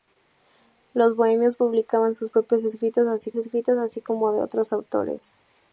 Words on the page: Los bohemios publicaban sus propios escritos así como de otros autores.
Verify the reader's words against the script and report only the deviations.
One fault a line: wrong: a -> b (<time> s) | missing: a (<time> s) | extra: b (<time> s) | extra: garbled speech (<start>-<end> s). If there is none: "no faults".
extra: escritos así (3.3 s)